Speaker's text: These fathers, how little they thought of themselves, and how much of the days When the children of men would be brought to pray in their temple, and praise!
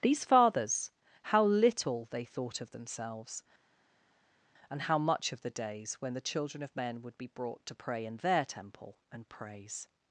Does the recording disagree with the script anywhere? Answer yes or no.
no